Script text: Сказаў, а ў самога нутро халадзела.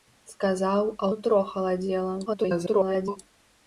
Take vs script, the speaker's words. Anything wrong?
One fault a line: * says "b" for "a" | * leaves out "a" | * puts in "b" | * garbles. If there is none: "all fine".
* leaves out "ў самога"
* garbles